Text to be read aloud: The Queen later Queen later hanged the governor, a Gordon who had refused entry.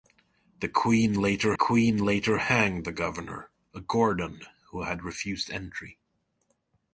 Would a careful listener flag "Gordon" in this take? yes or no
no